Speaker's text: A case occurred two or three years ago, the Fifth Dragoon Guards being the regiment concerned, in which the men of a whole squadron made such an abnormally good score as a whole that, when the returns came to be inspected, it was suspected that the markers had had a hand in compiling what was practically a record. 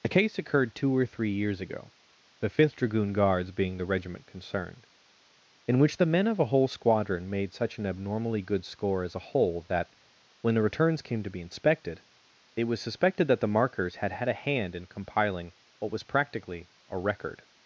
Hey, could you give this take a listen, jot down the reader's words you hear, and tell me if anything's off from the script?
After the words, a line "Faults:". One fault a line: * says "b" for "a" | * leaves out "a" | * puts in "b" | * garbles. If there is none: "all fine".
A case occurred two or three years ago, the Fifth Dragoon Guards being the regiment concerned, in which the men of a whole squadron made such an abnormally good score as a whole that, when the returns came to be inspected, it was suspected that the markers had had a hand in compiling what was practically a record.
Faults:
all fine